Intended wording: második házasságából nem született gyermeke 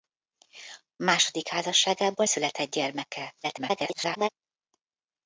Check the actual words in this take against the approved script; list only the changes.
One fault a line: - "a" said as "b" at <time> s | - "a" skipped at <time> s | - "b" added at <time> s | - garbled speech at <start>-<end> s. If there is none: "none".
- "nem" skipped at 2.2 s
- garbled speech at 3.4-4.3 s